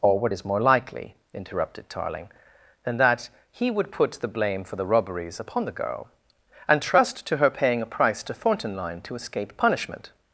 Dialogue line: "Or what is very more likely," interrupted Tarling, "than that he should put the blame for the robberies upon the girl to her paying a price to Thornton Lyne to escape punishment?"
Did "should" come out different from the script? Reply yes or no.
yes